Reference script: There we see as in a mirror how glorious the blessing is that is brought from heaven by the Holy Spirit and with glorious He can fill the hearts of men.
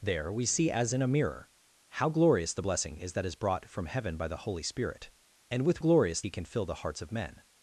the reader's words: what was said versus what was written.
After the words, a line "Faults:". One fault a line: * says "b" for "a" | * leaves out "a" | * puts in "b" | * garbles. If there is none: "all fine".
There we see as in a mirror how glorious the blessing is that is brought from heaven by the Holy Spirit and with glorious He can fill the hearts of men.
Faults:
all fine